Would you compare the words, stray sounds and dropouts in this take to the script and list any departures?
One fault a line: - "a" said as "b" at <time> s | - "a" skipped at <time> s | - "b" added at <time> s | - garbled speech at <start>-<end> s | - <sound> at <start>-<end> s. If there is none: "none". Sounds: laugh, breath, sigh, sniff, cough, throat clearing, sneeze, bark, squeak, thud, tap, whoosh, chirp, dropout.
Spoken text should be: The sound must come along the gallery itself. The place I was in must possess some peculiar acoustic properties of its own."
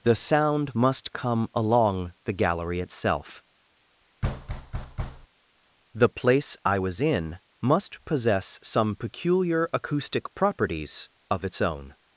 - thud at 4.2-5.3 s